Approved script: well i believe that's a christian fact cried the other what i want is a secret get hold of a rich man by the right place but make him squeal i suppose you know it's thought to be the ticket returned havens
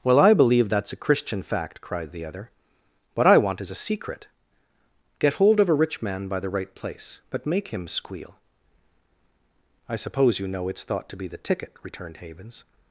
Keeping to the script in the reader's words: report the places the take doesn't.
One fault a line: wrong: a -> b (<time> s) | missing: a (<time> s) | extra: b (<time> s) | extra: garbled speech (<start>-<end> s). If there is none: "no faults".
no faults